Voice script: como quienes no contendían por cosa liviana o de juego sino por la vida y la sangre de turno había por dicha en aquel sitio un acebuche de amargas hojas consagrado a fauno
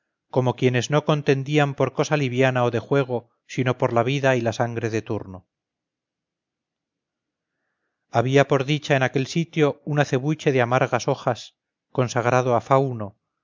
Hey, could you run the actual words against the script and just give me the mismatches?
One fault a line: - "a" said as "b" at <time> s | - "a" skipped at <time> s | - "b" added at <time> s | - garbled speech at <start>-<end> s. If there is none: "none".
none